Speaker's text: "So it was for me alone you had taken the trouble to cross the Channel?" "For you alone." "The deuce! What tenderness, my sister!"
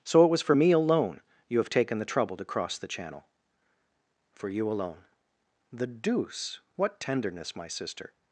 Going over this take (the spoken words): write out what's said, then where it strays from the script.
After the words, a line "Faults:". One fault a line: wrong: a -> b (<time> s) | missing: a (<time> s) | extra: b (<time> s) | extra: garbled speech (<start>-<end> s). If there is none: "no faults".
"So it was for me alone you have taken the trouble to cross the Channel?" "For you alone." "The deuce! What tenderness, my sister!"
Faults:
wrong: had -> have (1.6 s)